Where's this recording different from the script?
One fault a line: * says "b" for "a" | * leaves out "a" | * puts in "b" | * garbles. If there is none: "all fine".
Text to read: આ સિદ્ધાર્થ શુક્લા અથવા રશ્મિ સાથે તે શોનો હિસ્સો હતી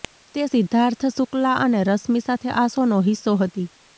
* says "તે" for "આ"
* says "અને" for "અથવા"
* says "આ" for "તે"